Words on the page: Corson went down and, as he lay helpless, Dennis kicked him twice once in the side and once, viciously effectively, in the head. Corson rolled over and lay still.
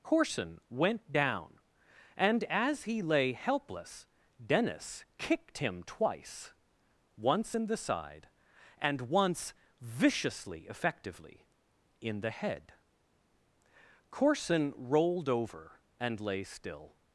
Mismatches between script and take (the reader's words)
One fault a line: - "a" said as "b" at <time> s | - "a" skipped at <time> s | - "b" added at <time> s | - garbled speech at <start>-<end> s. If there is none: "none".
none